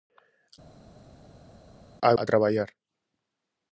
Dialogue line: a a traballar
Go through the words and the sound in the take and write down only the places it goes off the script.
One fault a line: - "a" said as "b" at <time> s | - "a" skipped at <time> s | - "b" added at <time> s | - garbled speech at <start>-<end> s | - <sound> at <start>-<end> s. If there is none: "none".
none